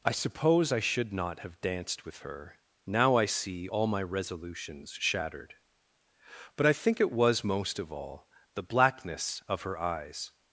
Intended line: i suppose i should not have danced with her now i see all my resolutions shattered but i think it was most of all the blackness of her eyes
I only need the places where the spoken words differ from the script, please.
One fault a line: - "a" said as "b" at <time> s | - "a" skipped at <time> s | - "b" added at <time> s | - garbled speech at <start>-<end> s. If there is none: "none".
none